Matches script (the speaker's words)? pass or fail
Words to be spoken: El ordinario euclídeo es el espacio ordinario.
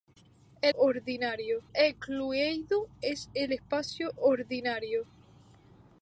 pass